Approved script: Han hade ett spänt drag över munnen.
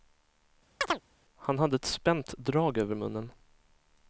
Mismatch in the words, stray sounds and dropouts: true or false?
true